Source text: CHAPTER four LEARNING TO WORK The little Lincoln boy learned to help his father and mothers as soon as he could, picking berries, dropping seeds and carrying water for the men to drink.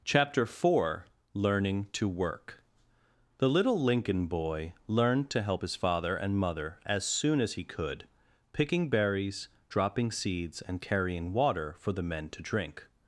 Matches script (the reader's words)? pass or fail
fail